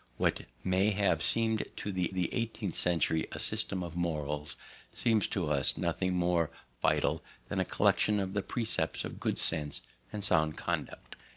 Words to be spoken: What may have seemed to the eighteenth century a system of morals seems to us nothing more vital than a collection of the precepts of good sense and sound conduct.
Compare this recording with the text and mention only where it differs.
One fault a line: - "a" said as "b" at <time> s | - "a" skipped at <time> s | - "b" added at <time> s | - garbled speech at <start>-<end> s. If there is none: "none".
- "the" added at 2.1 s